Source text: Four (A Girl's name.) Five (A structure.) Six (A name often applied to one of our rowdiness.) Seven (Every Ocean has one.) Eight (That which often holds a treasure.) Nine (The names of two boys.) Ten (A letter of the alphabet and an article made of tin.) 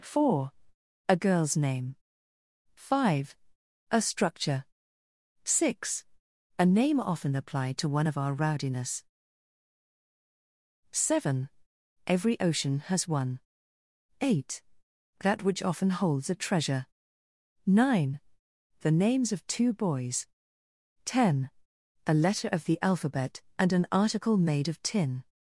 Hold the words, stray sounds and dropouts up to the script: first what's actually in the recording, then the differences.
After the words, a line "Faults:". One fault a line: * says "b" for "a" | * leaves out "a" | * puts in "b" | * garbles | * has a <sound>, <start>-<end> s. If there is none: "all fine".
Four (A Girl's name.) Five (A structure.) Six (A name often applied to one of our rowdiness.) Seven (Every Ocean has one.) Eight (That which often holds a treasure.) Nine (The names of two boys.) Ten (A letter of the alphabet and an article made of tin.)
Faults:
all fine